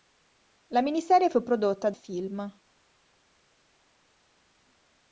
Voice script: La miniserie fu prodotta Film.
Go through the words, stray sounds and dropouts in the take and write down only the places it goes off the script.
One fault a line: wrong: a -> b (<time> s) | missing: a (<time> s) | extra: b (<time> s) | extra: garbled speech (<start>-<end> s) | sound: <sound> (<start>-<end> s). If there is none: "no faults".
no faults